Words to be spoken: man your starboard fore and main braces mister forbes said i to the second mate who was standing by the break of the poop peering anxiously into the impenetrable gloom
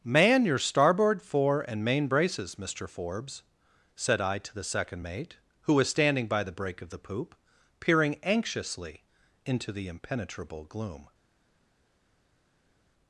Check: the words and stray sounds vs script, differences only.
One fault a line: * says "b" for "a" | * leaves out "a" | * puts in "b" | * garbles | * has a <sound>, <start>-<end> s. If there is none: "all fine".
all fine